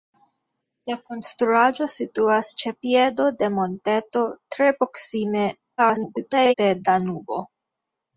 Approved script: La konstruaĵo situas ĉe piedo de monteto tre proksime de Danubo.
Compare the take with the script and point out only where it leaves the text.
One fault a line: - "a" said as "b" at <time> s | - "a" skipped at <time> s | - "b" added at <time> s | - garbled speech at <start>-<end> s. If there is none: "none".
- garbled speech at 5.8-6.5 s